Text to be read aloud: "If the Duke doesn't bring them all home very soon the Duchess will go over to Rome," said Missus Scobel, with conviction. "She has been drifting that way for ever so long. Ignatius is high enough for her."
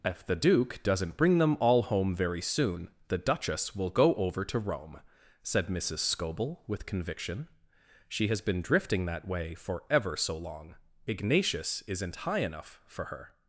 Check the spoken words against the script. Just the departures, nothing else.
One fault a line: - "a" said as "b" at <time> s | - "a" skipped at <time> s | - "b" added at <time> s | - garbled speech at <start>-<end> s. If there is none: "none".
- "is" said as "isn't" at 11.9 s